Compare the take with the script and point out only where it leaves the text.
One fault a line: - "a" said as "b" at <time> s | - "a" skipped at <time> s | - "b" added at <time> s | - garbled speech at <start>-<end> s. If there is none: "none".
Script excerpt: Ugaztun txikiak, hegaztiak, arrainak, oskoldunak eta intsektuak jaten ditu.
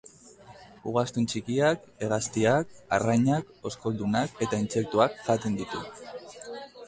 none